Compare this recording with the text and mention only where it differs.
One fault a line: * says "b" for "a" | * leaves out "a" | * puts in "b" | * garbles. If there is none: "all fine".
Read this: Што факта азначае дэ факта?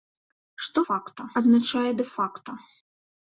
all fine